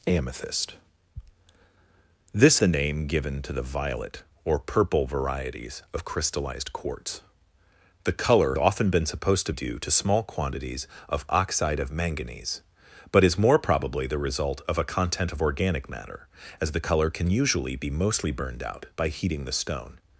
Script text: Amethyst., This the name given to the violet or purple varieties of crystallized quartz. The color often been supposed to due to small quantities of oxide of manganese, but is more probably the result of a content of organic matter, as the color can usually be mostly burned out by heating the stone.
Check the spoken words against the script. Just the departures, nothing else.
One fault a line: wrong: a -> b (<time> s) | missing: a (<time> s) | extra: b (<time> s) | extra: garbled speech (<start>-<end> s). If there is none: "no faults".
no faults